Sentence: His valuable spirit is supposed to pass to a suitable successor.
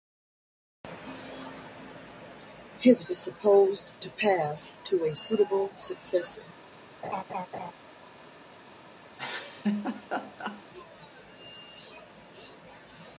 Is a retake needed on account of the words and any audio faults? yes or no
yes